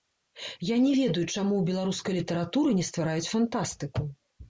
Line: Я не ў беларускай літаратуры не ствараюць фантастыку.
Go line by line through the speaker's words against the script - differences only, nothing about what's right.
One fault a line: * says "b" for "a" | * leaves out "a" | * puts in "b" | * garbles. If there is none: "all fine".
* puts in "ведаю чаму"